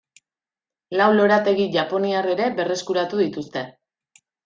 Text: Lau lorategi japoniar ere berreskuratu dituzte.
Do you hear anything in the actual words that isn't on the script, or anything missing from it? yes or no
no